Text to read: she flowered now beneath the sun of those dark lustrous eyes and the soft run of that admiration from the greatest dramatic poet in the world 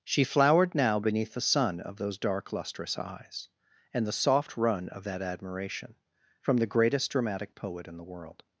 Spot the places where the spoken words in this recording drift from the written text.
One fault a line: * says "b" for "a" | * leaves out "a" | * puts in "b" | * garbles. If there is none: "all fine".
all fine